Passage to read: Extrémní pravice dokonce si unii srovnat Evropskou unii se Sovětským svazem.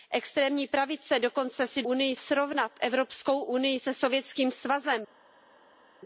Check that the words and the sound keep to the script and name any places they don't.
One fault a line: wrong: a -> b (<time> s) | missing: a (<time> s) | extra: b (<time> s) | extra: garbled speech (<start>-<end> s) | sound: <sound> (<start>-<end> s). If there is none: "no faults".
no faults